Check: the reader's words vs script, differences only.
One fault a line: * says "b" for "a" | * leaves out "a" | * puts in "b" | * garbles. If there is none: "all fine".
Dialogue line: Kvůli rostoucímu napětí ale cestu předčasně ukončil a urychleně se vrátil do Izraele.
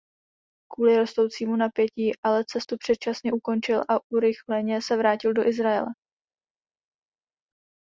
all fine